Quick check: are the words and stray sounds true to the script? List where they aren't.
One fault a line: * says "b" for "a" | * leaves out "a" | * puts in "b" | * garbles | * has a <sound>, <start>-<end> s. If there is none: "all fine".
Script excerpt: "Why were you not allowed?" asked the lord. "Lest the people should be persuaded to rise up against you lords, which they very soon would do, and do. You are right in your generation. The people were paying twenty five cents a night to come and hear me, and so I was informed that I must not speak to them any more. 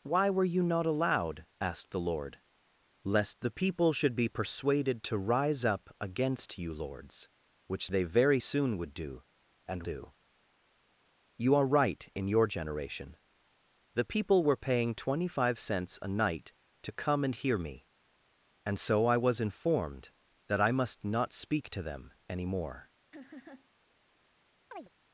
* has a laugh, 23.1-23.7 s
* has a chirp, 24.7-24.9 s